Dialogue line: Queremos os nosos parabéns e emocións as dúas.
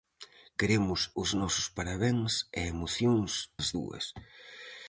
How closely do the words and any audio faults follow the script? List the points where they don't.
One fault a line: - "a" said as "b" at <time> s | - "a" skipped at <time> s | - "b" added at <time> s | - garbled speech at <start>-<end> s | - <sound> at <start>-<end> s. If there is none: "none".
none